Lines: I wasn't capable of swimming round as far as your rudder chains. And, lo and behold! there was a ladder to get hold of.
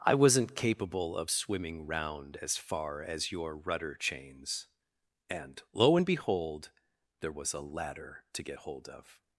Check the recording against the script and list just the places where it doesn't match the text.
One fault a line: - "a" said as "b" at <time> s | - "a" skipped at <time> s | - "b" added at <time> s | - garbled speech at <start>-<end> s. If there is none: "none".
none